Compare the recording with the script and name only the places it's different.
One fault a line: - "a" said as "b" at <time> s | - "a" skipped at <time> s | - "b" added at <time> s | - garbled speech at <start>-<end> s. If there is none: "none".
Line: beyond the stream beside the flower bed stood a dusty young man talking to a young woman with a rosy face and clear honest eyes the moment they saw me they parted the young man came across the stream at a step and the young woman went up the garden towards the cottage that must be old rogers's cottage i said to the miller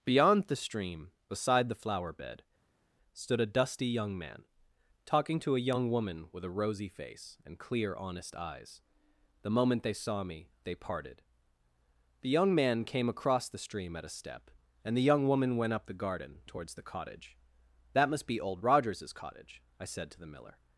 none